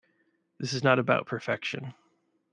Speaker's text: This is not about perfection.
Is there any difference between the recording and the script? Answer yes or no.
no